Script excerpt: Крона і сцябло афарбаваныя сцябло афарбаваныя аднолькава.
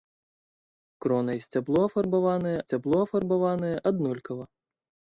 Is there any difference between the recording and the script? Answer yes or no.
no